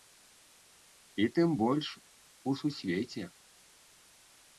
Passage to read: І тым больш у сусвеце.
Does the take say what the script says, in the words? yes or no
yes